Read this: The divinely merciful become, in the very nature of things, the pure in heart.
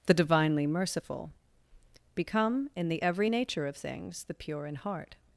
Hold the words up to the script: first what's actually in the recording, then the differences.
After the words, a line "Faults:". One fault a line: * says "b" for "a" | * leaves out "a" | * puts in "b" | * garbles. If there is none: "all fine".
The divinely merciful become, in the every nature of things, the pure in heart.
Faults:
* says "every" for "very"